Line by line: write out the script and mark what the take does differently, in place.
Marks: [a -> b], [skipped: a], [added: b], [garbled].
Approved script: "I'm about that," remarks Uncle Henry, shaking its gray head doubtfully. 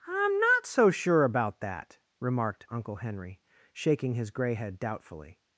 "I'm [added: not so sure] about that," [remarks -> remarked] Uncle Henry, shaking [its -> his] gray head doubtfully.